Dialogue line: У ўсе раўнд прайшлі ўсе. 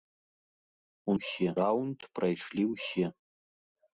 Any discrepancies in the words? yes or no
no